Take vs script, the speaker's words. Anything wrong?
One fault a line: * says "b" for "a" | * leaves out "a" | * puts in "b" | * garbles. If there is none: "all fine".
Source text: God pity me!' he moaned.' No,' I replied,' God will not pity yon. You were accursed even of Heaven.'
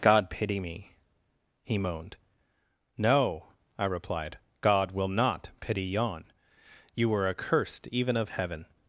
all fine